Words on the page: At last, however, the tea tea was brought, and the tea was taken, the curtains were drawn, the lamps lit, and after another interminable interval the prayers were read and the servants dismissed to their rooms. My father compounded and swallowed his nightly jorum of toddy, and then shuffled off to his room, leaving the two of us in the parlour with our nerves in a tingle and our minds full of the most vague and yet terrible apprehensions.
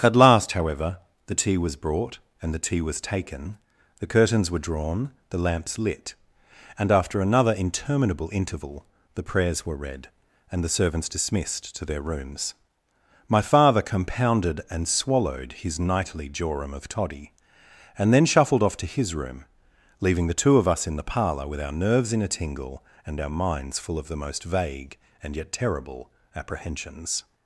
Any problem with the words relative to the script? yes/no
yes